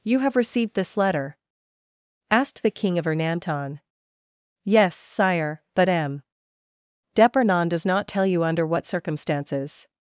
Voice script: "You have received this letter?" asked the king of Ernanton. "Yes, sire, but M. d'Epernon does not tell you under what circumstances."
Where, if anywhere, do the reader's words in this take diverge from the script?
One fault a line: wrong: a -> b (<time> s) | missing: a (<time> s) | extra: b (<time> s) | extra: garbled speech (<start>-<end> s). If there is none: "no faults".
no faults